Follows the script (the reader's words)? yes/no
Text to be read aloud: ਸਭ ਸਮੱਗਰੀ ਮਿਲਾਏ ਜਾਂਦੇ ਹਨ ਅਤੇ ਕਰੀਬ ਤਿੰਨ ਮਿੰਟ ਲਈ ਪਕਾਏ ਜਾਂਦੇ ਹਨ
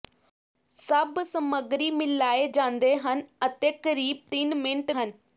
no